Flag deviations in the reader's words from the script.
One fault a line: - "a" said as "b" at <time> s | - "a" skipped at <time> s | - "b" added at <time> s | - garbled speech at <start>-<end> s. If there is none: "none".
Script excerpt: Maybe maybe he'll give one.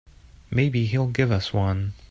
- "maybe" skipped at 0.8 s
- "us" added at 1.3 s